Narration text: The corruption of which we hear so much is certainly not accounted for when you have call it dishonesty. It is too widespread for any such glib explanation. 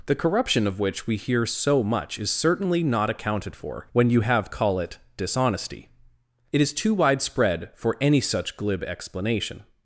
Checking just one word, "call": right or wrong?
right